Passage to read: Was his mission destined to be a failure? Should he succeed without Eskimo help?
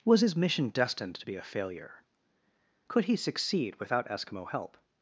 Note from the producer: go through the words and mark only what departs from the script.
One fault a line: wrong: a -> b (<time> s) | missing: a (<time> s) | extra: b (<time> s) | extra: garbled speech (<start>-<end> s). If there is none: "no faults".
wrong: Should -> Could (2.9 s)